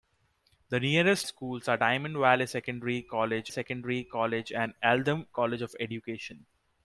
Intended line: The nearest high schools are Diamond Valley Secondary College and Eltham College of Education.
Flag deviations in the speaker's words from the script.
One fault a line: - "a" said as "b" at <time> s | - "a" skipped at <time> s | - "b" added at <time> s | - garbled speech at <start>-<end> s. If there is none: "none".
- "high" skipped at 1.3 s
- "Secondary College" added at 3.5 s